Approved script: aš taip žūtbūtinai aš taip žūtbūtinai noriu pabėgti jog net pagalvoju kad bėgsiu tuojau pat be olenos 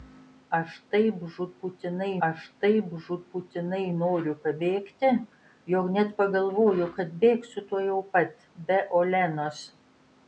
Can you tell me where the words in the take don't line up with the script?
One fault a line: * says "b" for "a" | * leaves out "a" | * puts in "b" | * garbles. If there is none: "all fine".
all fine